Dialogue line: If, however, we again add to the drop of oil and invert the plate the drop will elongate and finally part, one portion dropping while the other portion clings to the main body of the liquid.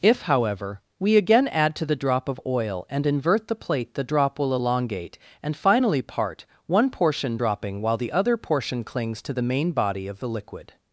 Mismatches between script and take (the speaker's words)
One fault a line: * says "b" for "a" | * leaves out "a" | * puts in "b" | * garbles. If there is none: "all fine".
all fine